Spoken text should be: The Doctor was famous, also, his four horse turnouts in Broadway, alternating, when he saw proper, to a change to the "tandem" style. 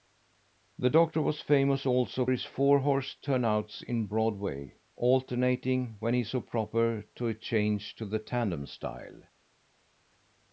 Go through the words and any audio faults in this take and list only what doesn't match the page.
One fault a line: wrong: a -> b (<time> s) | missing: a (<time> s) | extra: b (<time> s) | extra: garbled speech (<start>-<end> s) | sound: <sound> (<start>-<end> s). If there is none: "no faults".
no faults